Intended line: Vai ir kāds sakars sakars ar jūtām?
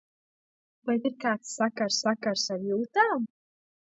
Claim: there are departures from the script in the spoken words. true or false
false